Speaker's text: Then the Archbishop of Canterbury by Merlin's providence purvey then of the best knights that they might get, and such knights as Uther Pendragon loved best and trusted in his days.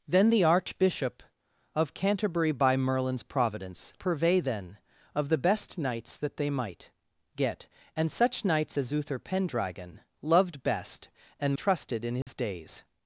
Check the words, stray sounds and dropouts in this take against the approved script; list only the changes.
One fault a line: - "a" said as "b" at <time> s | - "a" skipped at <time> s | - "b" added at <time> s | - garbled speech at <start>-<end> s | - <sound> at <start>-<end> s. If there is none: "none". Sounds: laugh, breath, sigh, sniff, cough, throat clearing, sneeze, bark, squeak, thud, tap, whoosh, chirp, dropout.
- dropout at 12.2-12.3 s